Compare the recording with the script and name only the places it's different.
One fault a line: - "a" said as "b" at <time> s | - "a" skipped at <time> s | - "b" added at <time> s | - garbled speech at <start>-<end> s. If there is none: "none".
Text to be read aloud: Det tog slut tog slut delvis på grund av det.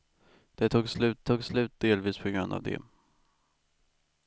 none